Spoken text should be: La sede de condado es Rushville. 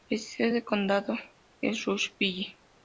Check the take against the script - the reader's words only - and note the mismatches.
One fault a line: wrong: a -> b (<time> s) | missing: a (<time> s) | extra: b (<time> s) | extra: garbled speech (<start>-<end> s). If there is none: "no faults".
no faults